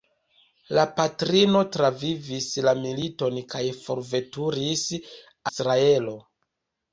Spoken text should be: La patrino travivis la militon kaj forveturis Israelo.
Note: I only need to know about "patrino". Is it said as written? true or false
true